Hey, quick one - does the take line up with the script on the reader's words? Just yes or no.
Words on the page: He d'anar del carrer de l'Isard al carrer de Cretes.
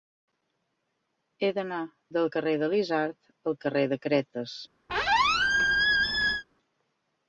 yes